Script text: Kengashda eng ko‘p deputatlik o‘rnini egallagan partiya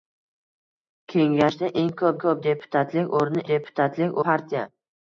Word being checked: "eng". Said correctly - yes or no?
yes